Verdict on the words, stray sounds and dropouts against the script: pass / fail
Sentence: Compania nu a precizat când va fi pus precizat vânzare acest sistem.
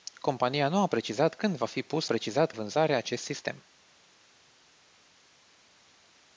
pass